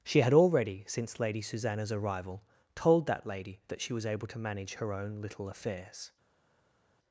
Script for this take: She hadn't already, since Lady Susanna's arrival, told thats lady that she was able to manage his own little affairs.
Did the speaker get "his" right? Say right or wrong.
wrong